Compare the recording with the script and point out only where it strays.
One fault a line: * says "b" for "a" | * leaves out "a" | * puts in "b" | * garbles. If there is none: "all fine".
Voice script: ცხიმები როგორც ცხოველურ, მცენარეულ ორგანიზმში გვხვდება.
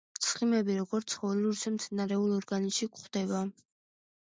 * puts in "ისე"